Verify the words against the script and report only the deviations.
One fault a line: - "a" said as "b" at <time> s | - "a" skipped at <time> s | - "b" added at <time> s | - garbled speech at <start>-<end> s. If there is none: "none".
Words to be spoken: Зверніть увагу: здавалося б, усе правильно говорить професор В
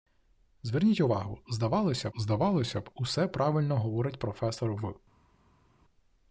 - "здавалося" added at 2.2 s